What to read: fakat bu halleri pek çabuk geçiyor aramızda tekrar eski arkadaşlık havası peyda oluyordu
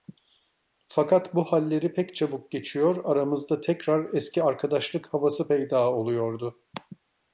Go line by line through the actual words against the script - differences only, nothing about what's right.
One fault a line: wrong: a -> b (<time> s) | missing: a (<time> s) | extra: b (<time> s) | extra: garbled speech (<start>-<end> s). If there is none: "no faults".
no faults